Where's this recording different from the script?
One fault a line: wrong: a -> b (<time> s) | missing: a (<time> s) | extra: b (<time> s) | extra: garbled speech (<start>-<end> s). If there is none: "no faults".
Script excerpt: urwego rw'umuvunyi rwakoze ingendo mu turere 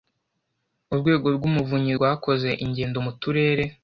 no faults